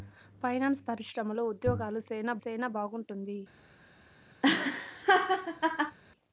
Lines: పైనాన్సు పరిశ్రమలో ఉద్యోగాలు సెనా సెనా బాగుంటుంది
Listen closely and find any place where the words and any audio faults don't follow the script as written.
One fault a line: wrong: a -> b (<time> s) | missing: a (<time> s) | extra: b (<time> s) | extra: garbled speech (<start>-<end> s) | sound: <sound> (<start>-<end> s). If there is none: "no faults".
sound: laugh (4.4-6.0 s)